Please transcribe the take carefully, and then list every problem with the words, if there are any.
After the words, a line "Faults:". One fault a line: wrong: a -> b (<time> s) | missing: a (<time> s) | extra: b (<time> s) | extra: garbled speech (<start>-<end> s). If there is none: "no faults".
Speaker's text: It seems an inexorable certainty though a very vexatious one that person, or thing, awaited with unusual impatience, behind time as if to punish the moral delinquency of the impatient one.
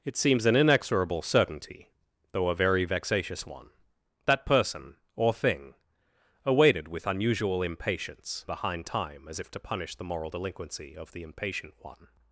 It seems an inexorable certainty though a very vexatious one that person, or thing, awaited with unusual impatience, behind time as if to punish the moral delinquency of the impatient one.
Faults:
no faults